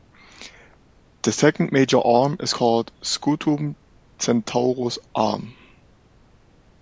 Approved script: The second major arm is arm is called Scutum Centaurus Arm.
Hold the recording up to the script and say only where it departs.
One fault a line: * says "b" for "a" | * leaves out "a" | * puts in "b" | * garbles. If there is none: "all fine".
* leaves out "arm is"